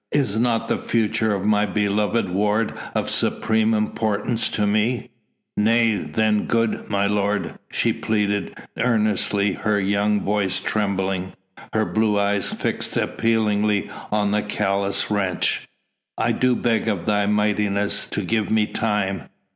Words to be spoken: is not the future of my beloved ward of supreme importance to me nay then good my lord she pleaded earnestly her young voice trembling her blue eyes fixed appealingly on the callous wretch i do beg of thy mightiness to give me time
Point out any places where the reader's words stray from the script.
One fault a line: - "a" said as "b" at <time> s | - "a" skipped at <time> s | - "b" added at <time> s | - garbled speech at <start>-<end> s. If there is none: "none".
none